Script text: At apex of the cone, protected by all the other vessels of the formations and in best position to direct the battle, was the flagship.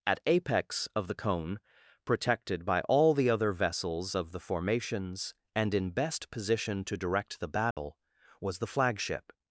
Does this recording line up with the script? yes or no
yes